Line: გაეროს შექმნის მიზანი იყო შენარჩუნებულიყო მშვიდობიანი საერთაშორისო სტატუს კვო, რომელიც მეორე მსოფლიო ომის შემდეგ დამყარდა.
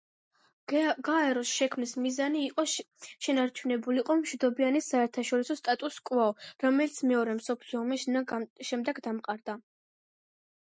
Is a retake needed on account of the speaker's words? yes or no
no